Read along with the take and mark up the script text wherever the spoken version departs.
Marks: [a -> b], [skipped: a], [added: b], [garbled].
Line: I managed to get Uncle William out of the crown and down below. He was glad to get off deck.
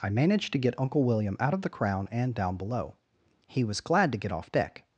I managed to get Uncle William out of the crown and down below. He was glad to get off deck.